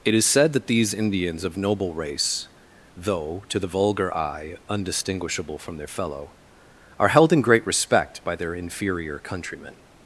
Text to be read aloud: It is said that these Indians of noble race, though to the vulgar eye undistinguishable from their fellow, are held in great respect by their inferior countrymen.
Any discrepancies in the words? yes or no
no